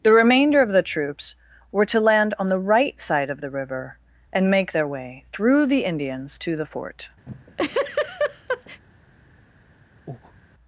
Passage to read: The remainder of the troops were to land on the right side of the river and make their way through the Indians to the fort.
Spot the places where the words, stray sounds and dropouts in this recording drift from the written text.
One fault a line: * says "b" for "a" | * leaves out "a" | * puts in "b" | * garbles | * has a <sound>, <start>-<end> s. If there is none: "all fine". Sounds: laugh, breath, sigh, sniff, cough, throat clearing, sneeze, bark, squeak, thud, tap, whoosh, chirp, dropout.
* has a laugh, 7.3-8.8 s
* has a breath, 10.1-10.4 s